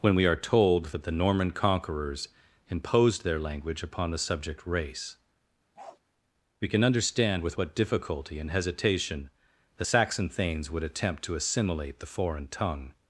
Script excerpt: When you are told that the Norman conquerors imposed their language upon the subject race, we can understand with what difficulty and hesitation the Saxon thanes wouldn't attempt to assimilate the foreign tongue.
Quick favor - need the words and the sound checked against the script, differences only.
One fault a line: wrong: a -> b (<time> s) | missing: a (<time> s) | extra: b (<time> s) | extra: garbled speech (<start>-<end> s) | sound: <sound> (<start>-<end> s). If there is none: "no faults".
wrong: you -> we (0.1 s)
sound: bark (5.8-6.0 s)
wrong: wouldn't -> would (10.7 s)